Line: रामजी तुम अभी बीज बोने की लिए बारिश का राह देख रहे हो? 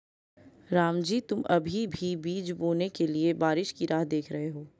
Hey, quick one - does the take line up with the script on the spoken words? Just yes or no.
no